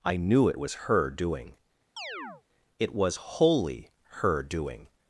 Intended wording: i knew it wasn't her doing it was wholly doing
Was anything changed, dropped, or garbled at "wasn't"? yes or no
yes